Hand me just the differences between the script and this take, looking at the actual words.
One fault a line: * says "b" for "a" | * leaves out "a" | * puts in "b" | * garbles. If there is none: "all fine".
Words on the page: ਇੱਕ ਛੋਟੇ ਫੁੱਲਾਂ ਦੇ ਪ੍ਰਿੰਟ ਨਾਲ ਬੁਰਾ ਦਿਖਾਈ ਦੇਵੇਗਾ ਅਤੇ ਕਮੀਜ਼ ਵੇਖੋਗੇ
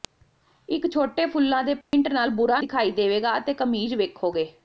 all fine